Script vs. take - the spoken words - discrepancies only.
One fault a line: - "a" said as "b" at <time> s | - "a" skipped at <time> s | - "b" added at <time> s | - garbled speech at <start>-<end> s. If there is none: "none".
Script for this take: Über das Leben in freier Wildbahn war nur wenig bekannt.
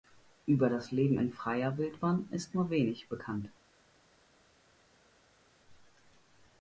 - "war" said as "ist" at 2.3 s